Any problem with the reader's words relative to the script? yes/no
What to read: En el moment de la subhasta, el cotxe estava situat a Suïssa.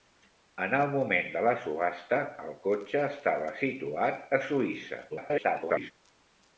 yes